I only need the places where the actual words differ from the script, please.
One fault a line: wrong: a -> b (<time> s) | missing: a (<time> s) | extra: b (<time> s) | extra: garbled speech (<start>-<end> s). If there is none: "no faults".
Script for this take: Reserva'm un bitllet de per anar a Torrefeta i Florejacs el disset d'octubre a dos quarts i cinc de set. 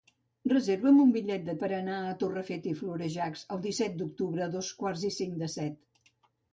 no faults